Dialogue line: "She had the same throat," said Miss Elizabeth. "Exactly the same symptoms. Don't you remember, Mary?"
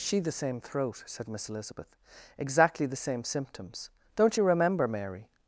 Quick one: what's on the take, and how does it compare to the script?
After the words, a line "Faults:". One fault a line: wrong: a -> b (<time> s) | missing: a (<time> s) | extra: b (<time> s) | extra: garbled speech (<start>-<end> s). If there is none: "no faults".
"She the same throat," said Miss Elizabeth. "Exactly the same symptoms. Don't you remember, Mary?"
Faults:
missing: had (0.2 s)